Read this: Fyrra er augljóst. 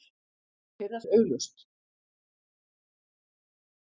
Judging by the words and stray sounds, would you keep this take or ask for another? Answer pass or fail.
pass